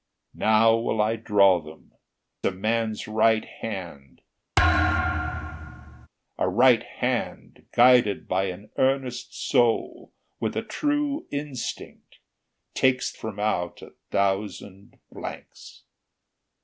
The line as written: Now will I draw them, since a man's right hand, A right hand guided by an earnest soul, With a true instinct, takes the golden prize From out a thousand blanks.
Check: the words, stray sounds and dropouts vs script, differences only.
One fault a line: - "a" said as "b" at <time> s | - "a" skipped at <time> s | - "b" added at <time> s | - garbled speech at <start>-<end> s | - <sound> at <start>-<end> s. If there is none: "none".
- "since" skipped at 1.9 s
- thud at 4.6-6.1 s
- "the golden prize" skipped at 13.1 s